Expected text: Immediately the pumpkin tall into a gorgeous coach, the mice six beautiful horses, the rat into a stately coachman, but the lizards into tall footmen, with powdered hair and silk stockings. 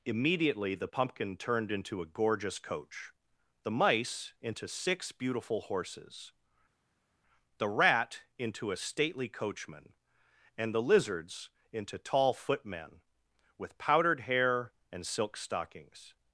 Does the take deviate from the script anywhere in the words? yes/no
yes